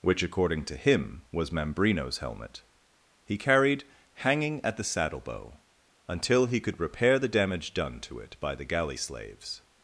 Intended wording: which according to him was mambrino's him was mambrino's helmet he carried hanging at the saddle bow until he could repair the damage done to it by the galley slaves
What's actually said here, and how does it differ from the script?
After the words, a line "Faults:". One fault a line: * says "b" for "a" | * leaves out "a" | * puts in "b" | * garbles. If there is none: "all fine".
which according to him was mambrino's helmet he carried hanging at the saddle bow until he could repair the damage done to it by the galley slaves
Faults:
* leaves out "him was mambrino's"